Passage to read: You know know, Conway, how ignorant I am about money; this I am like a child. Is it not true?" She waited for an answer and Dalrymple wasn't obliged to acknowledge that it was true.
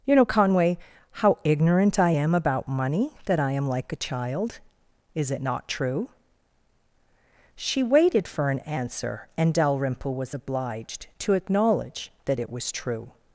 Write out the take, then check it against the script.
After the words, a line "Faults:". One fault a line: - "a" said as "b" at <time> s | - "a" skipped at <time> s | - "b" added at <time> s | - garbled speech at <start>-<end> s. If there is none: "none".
You know, Conway, how ignorant I am about money; that I am like a child. Is it not true?" She waited for an answer and Dalrymple was obliged to acknowledge that it was true.
Faults:
- "know" skipped at 0.2 s
- "this" said as "that" at 3.2 s
- "wasn't" said as "was" at 10.1 s